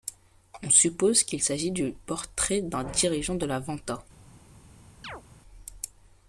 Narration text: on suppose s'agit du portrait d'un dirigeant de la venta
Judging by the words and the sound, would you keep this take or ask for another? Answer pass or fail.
fail